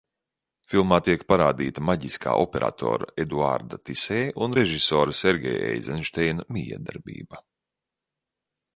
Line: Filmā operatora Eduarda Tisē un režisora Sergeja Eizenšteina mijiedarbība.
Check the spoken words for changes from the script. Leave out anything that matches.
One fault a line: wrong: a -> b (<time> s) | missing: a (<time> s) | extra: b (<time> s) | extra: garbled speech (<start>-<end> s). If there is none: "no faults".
extra: tiek parādīta maģiskā (1.1 s)